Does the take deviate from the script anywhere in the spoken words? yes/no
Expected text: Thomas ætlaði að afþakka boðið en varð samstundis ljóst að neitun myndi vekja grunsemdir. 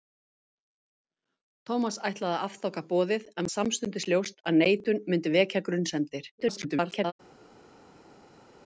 yes